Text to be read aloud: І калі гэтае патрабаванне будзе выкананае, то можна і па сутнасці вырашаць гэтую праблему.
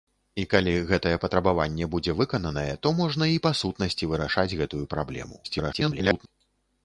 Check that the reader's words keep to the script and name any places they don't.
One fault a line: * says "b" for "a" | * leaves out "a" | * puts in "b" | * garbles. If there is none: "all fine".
* garbles